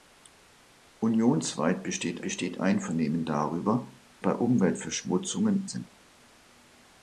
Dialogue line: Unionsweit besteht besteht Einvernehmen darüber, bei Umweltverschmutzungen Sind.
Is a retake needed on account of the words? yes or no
no